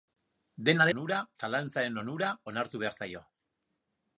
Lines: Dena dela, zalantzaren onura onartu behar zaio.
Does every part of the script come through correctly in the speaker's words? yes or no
no